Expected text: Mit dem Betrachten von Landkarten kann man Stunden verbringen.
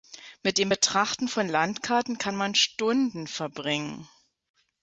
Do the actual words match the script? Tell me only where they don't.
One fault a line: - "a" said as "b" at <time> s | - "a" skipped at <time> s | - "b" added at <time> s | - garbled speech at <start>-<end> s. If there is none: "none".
none